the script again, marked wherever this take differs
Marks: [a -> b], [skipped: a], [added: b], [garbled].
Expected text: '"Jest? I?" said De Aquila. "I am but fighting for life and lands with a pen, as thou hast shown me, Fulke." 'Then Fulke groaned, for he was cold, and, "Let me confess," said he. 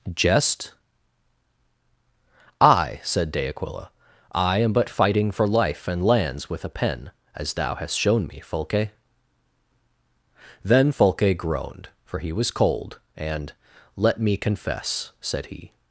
'"Jest? I?" said De Aquila. "I am but fighting for life and lands with a pen, as thou hast shown me, Fulke." 'Then Fulke groaned, for he was cold, and, "Let me confess," said he.